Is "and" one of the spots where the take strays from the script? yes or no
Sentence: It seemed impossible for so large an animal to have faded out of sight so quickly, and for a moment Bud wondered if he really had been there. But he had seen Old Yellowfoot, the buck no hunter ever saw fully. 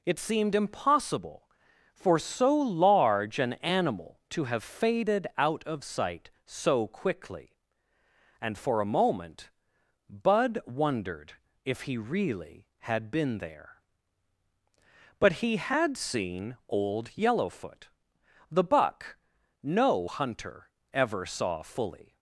no